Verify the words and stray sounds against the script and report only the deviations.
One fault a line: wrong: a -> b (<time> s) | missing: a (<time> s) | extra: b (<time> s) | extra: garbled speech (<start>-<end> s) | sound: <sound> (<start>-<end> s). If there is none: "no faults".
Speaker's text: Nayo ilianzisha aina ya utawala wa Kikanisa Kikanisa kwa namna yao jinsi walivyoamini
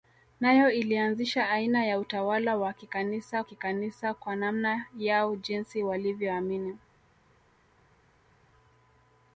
no faults